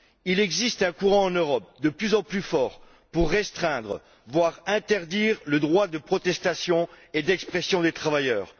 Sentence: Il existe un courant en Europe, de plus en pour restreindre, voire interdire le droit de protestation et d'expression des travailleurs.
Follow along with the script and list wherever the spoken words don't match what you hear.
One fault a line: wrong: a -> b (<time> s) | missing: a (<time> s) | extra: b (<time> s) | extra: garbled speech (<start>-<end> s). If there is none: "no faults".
extra: plus fort (2.2 s)